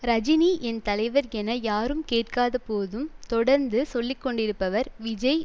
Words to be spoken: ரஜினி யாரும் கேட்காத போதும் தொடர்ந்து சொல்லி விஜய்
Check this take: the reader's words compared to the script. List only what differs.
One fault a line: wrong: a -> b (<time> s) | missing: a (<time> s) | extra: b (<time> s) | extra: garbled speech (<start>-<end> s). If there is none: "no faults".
extra: என் தலைவர் என (0.6 s)
extra: கொண்டிருப்பவர் (4.2 s)